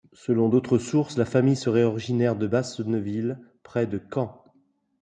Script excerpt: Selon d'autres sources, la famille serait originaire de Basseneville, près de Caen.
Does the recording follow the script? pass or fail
pass